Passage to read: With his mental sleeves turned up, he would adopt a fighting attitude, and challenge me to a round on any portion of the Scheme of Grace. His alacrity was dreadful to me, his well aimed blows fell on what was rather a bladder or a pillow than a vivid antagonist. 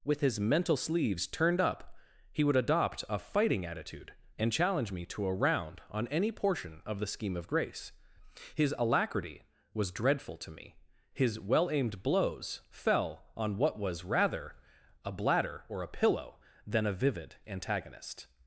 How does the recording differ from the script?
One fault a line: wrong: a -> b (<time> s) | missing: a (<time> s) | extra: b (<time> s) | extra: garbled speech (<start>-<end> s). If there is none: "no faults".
no faults